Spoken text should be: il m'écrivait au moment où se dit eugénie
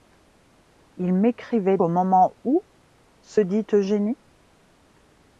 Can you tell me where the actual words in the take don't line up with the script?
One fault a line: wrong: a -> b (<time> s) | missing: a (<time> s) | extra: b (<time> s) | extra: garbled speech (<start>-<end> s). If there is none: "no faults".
no faults